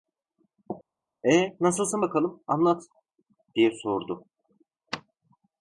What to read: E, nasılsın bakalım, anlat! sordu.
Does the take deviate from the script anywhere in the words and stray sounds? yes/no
yes